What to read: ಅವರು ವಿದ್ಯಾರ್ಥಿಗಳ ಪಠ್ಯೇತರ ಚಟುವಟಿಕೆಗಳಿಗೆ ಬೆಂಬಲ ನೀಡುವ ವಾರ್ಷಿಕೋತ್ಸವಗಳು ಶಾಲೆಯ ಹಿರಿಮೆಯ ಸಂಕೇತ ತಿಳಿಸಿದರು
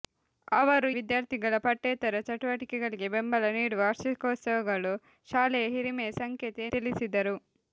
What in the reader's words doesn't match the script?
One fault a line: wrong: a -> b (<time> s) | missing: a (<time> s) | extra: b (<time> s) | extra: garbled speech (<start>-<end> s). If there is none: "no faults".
no faults